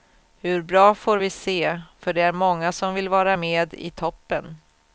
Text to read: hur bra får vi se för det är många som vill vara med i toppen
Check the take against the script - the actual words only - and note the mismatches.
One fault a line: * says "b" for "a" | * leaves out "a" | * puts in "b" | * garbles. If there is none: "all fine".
all fine